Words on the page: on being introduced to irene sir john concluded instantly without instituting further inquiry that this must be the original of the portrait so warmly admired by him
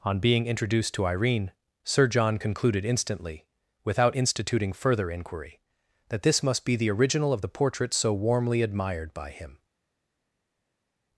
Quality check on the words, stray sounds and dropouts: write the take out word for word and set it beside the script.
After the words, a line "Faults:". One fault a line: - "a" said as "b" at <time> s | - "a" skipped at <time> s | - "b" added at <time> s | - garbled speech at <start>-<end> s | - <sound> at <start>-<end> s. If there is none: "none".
on being introduced to irene sir john concluded instantly without instituting further inquiry that this must be the original of the portrait so warmly admired by him
Faults:
none